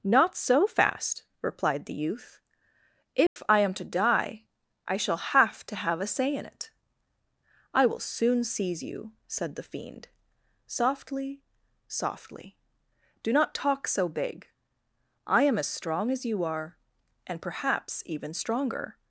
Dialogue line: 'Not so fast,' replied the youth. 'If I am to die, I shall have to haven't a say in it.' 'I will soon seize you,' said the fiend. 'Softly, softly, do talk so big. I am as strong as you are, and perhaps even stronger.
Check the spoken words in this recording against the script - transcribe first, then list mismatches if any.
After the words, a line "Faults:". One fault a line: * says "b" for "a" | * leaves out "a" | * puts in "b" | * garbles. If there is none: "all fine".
'Not so fast,' replied the youth. 'If I am to die, I shall have to have a say in it.' 'I will soon seize you,' said the fiend. 'Softly, softly, do not talk so big. I am as strong as you are, and perhaps even stronger.
Faults:
* says "have" for "haven't"
* puts in "not"